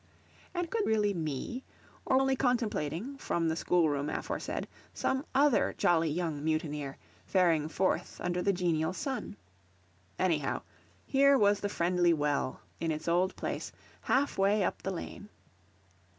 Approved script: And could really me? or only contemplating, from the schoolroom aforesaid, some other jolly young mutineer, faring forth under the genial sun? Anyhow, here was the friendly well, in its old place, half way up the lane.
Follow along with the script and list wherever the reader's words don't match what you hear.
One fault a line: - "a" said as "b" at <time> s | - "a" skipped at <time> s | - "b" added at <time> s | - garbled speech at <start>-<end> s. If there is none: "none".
none